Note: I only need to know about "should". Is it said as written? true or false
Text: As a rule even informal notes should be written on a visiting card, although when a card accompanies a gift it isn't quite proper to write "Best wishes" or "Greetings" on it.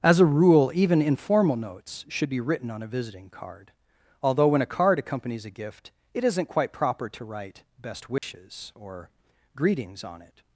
true